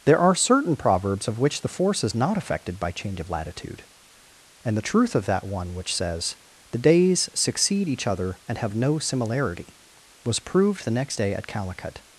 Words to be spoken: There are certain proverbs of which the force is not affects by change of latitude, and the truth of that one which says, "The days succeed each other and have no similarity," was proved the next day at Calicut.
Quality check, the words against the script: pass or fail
fail